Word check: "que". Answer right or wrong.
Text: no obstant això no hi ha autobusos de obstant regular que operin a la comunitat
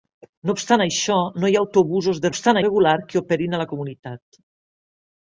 right